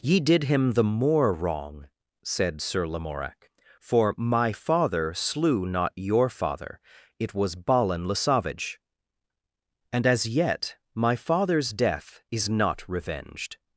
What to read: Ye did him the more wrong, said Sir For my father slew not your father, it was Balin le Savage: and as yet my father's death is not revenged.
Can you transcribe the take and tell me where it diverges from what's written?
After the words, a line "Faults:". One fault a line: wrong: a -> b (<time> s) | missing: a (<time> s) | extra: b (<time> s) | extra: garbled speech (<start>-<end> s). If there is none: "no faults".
Ye did him the more wrong, said Sir Lamorak, for my father slew not your father, it was Balin le Savage: and as yet my father's death is not revenged.
Faults:
extra: Lamorak (2.9 s)